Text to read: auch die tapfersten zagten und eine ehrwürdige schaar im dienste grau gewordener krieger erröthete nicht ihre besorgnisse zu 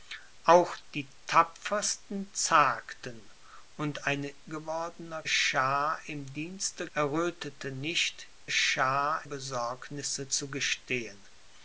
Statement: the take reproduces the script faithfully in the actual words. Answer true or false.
false